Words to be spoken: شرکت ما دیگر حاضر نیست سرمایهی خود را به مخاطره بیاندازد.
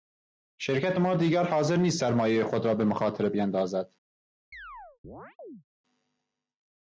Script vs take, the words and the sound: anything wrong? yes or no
yes